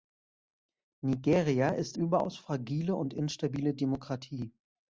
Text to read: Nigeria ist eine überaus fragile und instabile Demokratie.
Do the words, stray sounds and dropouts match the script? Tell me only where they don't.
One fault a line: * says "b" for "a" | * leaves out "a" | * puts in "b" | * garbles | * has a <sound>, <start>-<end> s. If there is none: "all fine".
* leaves out "eine"